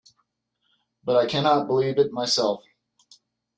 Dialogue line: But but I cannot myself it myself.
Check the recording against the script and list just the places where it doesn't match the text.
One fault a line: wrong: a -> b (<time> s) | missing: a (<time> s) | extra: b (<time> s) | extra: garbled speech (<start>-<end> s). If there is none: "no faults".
missing: but (1.1 s)
wrong: myself -> believe (1.7 s)